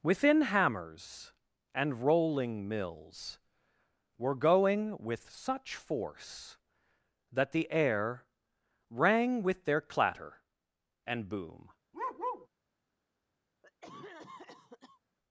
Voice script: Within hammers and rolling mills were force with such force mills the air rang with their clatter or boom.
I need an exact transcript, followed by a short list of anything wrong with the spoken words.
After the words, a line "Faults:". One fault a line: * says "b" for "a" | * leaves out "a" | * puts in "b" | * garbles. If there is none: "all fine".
Within hammers and rolling mills were going with such force that the air rang with their clatter and boom.
Faults:
* says "going" for "force"
* says "that" for "mills"
* says "and" for "or"